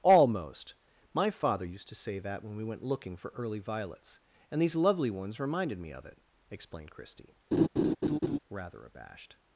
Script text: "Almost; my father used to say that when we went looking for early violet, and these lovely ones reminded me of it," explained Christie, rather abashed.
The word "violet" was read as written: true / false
false